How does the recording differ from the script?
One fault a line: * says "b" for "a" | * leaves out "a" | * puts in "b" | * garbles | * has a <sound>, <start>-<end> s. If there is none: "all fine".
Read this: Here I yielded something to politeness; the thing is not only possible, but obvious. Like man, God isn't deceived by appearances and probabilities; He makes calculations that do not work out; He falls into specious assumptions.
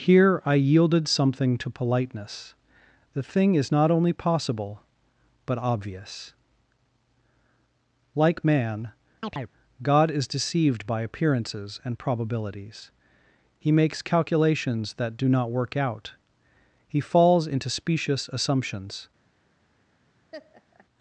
* has a chirp, 9.2-9.5 s
* says "is" for "isn't"
* has a laugh, 20.3-20.9 s